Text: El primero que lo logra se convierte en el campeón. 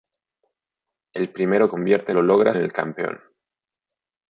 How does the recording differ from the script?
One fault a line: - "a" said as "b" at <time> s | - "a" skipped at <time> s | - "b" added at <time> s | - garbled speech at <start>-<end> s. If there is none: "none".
- "que" said as "convierte" at 1.7 s
- "se convierte" skipped at 2.6 s